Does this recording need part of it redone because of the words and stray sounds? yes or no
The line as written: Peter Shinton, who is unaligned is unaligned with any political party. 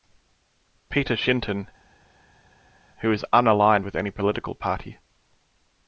yes